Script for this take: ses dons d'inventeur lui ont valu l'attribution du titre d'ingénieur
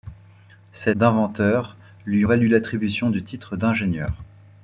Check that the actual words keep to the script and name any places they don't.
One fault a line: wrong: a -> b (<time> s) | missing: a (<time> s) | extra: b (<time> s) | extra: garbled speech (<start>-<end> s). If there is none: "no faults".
missing: dons (0.9 s)
missing: ont (2.3 s)